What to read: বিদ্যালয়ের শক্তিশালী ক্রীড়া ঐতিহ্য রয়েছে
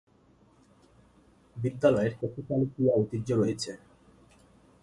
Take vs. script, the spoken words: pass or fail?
pass